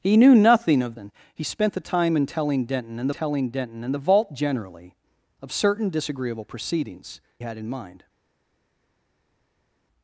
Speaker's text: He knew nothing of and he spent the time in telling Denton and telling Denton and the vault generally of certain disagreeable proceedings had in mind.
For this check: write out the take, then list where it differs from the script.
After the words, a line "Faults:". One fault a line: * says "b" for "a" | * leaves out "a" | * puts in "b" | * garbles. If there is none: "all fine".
He knew nothing of and he spent the time in telling Denton and telling Denton and the vault generally of certain disagreeable proceedings had in mind.
Faults:
all fine